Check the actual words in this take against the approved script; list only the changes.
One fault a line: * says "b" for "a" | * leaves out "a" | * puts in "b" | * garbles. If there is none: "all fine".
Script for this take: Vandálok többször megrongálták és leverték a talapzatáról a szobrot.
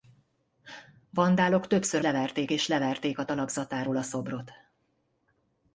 * says "leverték" for "megrongálták"